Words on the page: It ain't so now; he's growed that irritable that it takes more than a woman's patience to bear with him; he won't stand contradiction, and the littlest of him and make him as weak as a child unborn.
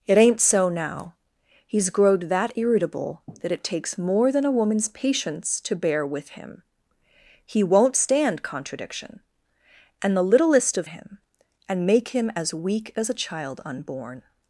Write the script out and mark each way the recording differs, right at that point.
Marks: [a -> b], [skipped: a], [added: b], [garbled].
It ain't so now; he's growed that irritable that it takes more than a woman's patience to bear with him; he won't stand contradiction, and the littlest of him and make him as weak as a child unborn.